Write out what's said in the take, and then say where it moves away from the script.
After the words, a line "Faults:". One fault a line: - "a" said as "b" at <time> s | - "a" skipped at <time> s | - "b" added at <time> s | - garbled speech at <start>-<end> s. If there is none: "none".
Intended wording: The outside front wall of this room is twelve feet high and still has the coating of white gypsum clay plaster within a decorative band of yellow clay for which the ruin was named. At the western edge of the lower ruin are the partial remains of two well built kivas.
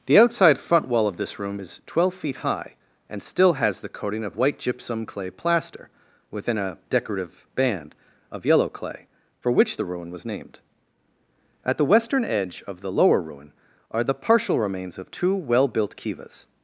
The outside front wall of this room is twelve feet high and still has the coating of white gypsum clay plaster within a decorative band of yellow clay for which the ruin was named. At the western edge of the lower ruin are the partial remains of two well built kivas.
Faults:
none